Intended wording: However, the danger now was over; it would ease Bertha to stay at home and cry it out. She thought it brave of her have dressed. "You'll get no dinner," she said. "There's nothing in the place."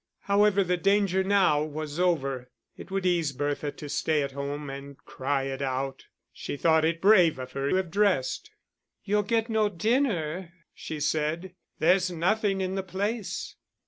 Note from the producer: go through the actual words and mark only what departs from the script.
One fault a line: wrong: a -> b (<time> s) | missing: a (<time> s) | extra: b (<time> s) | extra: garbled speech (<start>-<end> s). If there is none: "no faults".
no faults